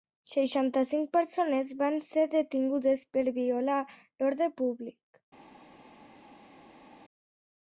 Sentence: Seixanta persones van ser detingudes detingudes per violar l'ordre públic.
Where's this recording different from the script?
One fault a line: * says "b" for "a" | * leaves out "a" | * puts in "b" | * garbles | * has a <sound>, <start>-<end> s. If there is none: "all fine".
* puts in "cinc"
* leaves out "detingudes"